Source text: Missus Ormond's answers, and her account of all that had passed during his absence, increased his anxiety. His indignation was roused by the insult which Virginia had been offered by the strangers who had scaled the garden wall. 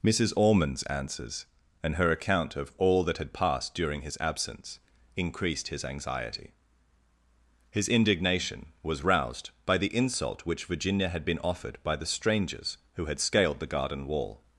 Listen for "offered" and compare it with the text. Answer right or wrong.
right